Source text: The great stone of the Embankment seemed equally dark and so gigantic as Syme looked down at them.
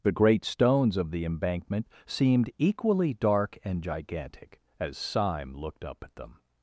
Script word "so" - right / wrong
wrong